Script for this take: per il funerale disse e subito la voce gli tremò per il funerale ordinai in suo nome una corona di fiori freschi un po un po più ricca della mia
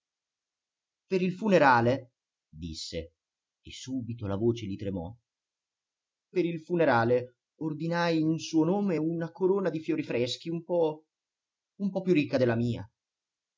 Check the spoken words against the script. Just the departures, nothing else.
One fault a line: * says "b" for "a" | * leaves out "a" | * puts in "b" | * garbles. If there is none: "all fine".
all fine